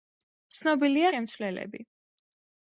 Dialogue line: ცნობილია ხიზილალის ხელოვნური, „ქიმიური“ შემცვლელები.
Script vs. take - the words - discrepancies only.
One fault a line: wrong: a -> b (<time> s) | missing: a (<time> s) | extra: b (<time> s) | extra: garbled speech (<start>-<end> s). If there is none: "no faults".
missing: ხიზილალის ხელოვნური ქიმიური (1.1 s)